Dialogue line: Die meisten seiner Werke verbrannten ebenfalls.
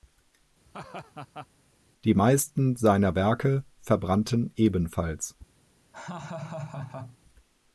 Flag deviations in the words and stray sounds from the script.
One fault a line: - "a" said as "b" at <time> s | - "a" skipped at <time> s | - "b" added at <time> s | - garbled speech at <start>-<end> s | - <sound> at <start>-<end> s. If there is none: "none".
- laugh at 0.6-1.5 s
- laugh at 5.9-7.2 s